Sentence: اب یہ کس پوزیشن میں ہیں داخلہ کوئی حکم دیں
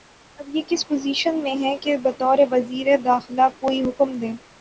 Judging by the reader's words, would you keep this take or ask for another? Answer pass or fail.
fail